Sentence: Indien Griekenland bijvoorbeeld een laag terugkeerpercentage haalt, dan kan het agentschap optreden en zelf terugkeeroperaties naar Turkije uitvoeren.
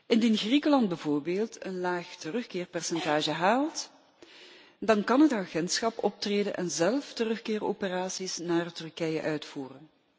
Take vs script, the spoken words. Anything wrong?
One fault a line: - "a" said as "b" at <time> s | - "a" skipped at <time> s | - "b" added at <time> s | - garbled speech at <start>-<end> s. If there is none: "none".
none